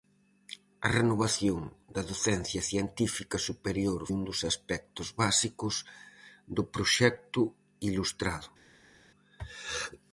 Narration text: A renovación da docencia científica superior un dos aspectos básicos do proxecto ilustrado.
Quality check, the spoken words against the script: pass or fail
pass